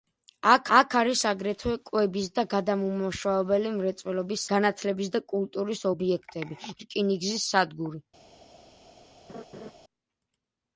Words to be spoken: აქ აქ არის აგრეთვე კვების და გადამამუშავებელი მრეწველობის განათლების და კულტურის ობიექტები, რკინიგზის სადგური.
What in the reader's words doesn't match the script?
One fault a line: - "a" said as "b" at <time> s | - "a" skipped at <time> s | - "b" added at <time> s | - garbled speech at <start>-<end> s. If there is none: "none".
none